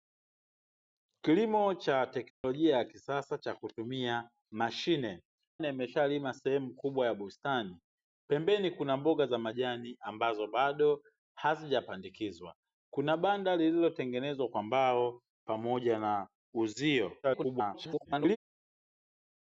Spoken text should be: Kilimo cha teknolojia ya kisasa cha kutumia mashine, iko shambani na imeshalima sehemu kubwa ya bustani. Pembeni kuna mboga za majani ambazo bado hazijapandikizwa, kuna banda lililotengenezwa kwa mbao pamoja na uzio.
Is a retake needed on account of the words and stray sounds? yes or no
yes